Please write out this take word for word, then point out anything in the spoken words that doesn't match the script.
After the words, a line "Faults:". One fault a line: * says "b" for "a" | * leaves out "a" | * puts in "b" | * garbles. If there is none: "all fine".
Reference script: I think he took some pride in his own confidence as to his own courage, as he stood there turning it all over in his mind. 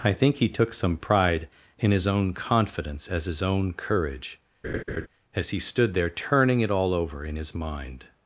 I think he took some pride in his own confidence as his own courage, as he stood there turning it all over in his mind.
Faults:
* leaves out "to"